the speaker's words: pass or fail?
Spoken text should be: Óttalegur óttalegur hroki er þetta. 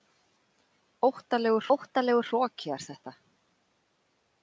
pass